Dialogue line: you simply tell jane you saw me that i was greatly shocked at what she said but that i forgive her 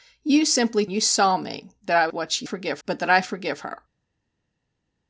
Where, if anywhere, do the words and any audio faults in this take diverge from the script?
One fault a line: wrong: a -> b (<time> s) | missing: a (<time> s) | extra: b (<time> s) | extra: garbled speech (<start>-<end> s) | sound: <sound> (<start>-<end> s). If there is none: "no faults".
missing: tell jane (0.9 s)
missing: was greatly shocked (2.1 s)
wrong: said -> forgive (2.4 s)